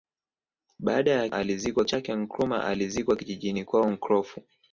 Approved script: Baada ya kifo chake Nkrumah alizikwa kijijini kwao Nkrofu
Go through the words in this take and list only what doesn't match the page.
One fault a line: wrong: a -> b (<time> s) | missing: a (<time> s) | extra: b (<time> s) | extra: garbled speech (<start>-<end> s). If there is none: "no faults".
wrong: kifo -> alizikwa (1.3 s)